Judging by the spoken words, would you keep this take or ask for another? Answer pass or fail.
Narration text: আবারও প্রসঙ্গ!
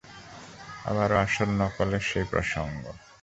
fail